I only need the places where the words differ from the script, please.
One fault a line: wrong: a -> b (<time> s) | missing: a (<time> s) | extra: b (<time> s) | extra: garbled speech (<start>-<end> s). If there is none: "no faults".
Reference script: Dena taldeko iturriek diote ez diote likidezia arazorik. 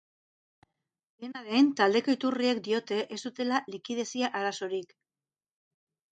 extra: den (1.5 s)
wrong: diote -> dutela (3.3 s)